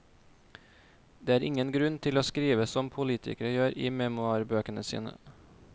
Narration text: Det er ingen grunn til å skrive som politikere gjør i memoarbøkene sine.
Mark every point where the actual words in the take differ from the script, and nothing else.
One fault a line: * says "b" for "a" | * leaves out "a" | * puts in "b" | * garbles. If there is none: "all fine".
all fine